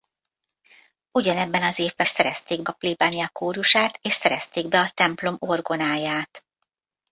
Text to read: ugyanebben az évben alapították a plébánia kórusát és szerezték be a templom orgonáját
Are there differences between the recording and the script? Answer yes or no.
yes